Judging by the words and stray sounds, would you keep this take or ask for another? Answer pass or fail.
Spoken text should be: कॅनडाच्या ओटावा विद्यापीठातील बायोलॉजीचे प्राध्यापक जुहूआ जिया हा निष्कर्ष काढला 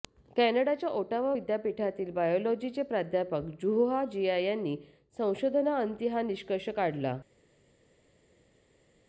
fail